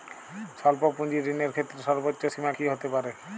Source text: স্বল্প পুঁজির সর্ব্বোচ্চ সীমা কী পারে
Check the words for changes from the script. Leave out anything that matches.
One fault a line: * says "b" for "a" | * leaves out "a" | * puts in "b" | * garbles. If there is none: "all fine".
* puts in "ঋণের ক্ষেত্রে"
* puts in "হতে"